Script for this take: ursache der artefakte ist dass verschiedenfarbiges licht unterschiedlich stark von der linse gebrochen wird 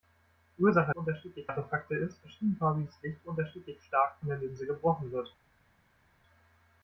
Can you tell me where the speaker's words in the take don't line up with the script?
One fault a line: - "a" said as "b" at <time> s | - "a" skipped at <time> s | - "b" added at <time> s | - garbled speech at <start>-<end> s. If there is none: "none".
- "der" said as "unterschiedlich" at 0.9 s
- "dass" skipped at 2.2 s